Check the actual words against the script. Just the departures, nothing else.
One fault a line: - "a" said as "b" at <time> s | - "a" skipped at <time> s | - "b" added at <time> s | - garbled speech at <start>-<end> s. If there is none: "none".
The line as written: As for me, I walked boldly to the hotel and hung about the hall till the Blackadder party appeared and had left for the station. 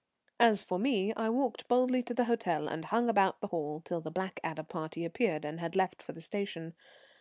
none